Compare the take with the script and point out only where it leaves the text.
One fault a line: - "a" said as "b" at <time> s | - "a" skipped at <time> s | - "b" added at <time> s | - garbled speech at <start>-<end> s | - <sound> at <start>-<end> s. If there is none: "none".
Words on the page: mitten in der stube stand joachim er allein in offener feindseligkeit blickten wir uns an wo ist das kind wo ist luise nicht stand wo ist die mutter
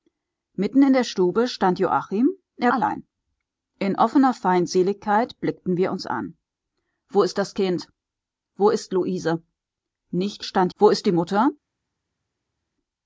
none